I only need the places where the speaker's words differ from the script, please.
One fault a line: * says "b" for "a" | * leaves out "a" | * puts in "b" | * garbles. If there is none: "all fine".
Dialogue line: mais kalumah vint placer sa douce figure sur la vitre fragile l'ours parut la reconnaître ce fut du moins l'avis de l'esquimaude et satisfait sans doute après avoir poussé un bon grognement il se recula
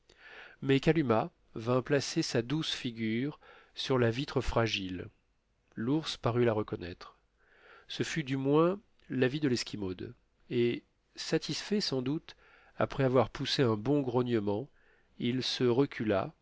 all fine